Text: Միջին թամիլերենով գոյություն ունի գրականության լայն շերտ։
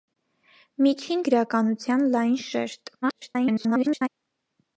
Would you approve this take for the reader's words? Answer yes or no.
no